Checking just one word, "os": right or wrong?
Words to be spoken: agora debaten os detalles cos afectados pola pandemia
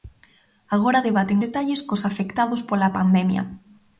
wrong